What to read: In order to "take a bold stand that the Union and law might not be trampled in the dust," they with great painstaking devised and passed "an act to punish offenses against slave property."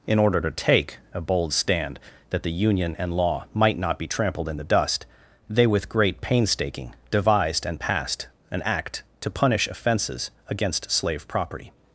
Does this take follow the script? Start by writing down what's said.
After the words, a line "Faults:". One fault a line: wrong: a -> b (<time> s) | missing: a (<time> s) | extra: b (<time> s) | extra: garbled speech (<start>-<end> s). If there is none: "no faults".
In order to "take a bold stand that the Union and law might not be trampled in the dust," they with great painstaking devised and passed "an act to punish offenses against slave property."
Faults:
no faults